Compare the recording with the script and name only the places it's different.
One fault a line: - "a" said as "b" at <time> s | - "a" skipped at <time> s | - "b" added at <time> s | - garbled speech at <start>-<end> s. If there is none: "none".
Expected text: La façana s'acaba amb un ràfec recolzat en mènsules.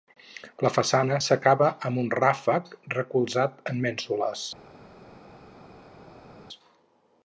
none